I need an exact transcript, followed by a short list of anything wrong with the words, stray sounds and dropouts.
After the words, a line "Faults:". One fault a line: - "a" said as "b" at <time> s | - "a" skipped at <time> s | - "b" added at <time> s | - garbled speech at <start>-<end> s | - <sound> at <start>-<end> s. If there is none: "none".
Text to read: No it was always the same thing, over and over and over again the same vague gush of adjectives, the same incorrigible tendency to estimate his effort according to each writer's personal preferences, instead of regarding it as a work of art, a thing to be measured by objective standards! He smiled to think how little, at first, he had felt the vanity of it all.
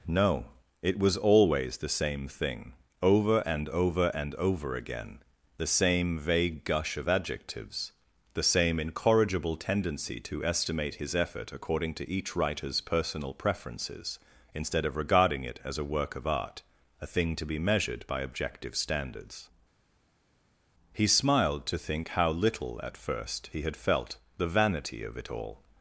No it was always the same thing, over and over and over again the same vague gush of adjectives, the same incorrigible tendency to estimate his effort according to each writer's personal preferences, instead of regarding it as a work of art, a thing to be measured by objective standards! He smiled to think how little, at first, he had felt the vanity of it all.
Faults:
none